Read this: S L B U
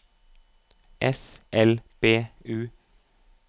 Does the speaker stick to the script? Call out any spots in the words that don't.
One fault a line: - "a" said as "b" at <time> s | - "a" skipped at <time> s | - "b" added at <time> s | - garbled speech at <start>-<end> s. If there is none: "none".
none